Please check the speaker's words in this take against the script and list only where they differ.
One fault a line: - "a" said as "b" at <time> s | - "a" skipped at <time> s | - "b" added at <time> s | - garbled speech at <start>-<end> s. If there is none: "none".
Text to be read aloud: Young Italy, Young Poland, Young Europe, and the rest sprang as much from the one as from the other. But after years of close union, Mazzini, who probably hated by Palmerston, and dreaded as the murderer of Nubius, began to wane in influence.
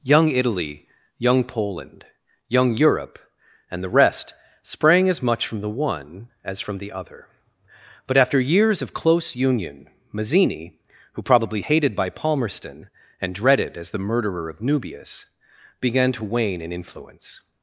none